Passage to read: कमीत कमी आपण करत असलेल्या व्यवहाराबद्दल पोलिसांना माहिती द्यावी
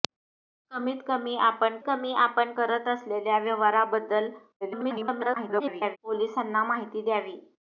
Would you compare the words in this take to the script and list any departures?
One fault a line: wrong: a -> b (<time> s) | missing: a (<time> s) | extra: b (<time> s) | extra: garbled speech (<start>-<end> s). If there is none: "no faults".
extra: कमी आपण (1.9 s)
extra: garbled speech (4.6-6.0 s)